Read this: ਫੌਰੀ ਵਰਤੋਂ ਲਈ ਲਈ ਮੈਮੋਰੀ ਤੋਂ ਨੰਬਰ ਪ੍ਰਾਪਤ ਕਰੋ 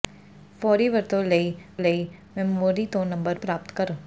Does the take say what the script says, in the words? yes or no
yes